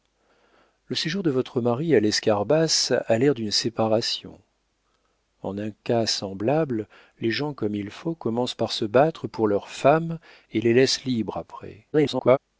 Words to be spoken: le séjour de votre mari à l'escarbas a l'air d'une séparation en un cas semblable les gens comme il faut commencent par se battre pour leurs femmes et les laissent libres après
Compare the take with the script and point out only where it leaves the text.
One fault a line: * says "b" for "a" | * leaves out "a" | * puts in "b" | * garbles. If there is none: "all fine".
* garbles